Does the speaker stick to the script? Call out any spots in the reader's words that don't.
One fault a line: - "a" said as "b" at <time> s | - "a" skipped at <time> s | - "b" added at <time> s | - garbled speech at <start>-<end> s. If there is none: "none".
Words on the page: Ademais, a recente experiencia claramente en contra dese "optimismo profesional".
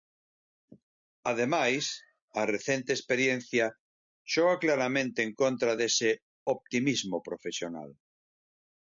- "xoga" added at 4.3 s